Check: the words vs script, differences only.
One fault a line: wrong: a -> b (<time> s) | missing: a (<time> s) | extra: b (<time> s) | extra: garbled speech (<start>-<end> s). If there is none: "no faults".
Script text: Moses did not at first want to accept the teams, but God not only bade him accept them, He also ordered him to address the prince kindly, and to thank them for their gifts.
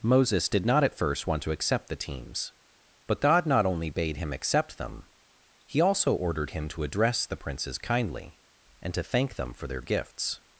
wrong: prince -> princes (7.4 s)